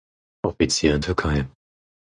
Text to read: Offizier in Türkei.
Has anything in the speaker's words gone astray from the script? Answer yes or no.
no